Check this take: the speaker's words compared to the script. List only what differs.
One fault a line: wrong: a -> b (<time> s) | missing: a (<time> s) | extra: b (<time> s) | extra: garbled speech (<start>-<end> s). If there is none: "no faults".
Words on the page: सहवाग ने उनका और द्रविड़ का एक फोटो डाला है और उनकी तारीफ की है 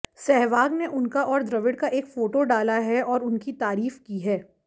no faults